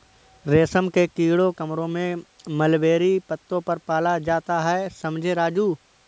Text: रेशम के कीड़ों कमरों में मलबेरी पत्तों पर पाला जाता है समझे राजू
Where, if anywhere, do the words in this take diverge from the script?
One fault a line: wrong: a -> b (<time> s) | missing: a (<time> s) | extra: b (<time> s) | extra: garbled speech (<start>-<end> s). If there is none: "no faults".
no faults